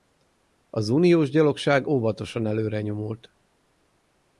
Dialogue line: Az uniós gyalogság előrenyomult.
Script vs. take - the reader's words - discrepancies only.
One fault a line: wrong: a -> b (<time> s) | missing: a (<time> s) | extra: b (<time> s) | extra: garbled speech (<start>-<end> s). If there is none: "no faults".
extra: óvatosan (1.9 s)